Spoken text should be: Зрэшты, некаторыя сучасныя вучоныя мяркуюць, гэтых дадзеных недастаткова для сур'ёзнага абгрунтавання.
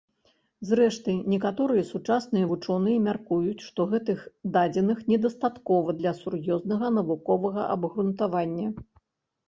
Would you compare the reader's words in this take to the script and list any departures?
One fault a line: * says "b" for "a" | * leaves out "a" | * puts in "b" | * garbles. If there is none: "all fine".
* puts in "што"
* puts in "навуковага"